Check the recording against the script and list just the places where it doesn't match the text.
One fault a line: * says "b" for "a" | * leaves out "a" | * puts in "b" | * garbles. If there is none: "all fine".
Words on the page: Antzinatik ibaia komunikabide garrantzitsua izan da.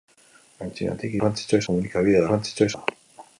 * says "garrantzitsua" for "ibaia"
* leaves out "izan"